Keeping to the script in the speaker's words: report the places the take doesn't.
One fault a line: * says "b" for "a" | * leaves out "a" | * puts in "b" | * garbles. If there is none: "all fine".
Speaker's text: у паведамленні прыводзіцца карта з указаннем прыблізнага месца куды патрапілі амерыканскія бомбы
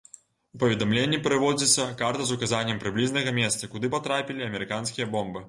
all fine